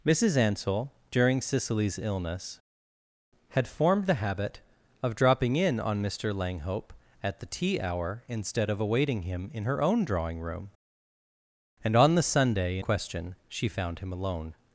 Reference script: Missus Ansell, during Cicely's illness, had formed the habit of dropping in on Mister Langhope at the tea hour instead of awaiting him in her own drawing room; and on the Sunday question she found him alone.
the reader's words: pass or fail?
pass